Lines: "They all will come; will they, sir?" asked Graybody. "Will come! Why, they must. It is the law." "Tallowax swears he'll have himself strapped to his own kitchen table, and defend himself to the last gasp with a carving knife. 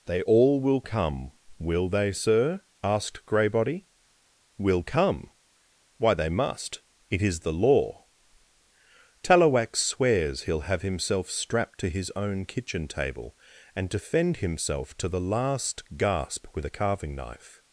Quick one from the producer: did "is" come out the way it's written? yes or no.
yes